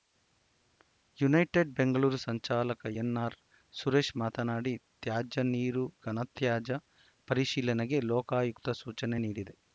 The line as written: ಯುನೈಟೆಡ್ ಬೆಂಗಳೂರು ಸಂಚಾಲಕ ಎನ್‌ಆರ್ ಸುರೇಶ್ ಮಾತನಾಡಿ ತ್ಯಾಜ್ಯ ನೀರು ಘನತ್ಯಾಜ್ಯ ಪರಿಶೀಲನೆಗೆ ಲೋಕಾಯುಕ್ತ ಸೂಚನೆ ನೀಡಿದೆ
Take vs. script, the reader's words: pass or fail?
pass